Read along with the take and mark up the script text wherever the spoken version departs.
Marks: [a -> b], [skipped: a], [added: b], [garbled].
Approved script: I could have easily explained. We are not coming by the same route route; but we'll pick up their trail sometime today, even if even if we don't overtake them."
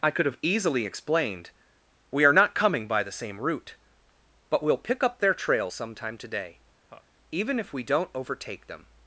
I could have easily explained. We are not coming by the same route [skipped: route;] but we'll pick up their trail sometime today, even if [skipped: even if] we don't overtake them."